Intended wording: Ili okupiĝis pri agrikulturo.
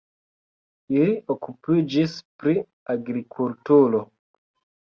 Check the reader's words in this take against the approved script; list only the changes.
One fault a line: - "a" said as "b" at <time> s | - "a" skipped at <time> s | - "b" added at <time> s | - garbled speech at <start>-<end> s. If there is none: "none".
none